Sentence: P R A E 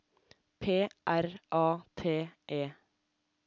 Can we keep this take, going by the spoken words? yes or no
no